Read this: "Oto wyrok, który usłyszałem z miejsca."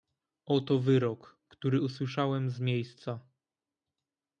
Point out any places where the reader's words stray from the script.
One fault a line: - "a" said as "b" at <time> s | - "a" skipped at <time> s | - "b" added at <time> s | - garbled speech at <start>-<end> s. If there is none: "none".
none